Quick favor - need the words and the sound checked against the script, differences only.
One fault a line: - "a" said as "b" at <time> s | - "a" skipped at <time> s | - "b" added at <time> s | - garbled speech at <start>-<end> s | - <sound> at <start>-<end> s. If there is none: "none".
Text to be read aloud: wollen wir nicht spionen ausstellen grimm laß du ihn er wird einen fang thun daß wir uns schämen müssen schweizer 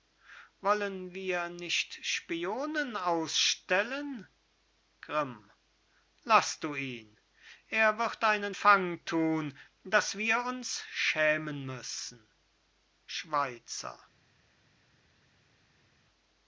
none